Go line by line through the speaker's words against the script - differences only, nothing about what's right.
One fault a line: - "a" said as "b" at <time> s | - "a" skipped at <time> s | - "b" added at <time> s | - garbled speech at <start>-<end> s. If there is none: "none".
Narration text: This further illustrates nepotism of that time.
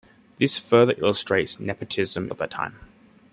none